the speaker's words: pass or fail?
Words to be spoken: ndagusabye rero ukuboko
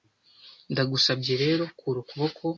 fail